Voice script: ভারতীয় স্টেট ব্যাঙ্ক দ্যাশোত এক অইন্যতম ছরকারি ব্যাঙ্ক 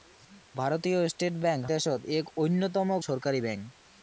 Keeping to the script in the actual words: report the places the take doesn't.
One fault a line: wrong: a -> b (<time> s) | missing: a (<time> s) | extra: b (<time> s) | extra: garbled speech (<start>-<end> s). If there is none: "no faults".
no faults